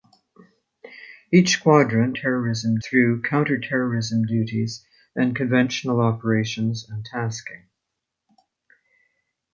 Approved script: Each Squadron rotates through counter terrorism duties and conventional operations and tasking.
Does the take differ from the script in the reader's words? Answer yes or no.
yes